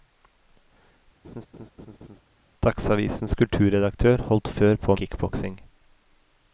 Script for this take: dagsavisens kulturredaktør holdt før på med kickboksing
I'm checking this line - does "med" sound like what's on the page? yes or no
no